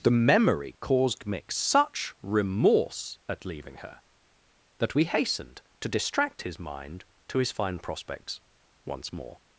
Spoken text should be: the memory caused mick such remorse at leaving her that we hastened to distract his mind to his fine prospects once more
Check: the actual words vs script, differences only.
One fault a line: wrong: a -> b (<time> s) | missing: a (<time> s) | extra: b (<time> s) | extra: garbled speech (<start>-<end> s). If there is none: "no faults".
no faults